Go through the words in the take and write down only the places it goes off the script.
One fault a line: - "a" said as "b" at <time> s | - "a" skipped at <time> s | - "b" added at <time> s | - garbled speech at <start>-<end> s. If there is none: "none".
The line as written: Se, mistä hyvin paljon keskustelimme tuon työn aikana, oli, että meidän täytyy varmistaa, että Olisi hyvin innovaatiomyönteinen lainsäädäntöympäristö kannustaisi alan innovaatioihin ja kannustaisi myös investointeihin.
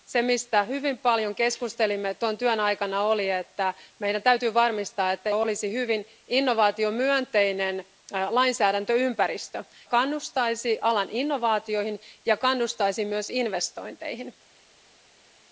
none